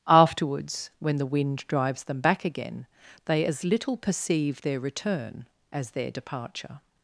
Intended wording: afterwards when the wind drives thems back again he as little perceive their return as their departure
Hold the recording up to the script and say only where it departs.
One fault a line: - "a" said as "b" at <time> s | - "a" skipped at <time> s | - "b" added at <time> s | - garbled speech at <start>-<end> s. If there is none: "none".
- "thems" said as "them" at 2.0 s
- "he" said as "they" at 3.2 s